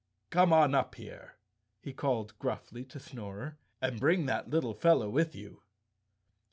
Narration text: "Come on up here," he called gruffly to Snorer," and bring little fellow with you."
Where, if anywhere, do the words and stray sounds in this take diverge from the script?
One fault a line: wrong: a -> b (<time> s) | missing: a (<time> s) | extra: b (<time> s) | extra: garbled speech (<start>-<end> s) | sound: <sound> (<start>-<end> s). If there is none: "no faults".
extra: that (4.3 s)